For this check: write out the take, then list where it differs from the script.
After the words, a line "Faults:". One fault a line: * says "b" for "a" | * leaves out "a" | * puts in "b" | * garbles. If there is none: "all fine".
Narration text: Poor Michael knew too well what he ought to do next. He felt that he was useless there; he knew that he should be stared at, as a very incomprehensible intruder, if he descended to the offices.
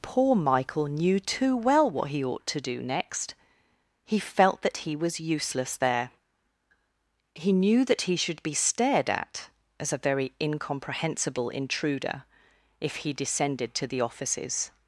Poor Michael knew too well what he ought to do next. He felt that he was useless there; he knew that he should be stared at, as a very incomprehensible intruder, if he descended to the offices.
Faults:
all fine